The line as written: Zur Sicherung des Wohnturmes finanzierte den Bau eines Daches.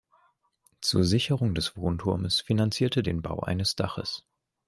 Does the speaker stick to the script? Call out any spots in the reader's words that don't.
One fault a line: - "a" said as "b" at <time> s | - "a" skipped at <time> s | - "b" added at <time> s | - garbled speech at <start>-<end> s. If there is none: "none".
none